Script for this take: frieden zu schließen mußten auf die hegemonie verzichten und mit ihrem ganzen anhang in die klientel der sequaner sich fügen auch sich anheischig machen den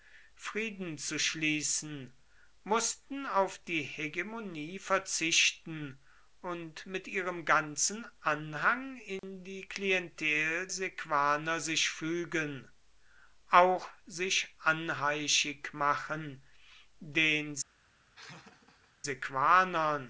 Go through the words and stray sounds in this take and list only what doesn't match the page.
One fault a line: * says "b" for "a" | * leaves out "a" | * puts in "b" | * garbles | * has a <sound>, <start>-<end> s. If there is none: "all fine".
* has a dropout, 9.2-9.2 s
* leaves out "der"
* has a laugh, 18.1-18.9 s